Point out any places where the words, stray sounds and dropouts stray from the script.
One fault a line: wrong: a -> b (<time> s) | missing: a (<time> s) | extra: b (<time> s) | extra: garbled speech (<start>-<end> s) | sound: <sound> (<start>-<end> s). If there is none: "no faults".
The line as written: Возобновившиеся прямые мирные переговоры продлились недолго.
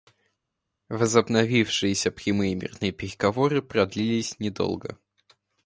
no faults